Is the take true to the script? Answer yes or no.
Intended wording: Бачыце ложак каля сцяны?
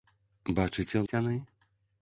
no